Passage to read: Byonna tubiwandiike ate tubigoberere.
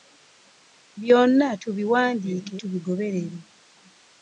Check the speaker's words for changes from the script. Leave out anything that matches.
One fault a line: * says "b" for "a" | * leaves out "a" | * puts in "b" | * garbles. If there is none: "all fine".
* leaves out "ate"